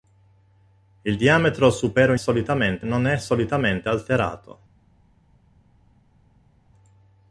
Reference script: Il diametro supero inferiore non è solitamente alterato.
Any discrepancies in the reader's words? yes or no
yes